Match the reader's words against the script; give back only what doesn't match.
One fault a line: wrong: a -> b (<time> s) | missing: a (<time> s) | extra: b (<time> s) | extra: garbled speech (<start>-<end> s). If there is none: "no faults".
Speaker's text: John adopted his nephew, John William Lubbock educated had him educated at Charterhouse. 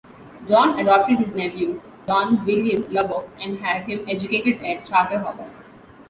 wrong: educated -> and (3.4 s)